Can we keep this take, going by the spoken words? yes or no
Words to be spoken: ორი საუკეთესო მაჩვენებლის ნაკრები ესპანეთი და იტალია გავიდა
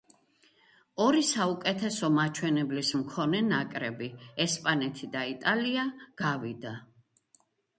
no